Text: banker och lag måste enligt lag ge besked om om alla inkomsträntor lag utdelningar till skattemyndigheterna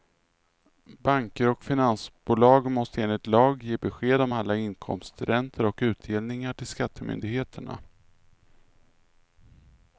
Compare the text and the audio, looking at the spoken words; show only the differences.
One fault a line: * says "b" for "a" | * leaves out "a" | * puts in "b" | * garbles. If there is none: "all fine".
* says "finansbolag" for "lag"
* leaves out "om"
* says "och" for "lag"